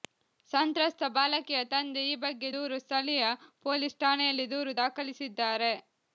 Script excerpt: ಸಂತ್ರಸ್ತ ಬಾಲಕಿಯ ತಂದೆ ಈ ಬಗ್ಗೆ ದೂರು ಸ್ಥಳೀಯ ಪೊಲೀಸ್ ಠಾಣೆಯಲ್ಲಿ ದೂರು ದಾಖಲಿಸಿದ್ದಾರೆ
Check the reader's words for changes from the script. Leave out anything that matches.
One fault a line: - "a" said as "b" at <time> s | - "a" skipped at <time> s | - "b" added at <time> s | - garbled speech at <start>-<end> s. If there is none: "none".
none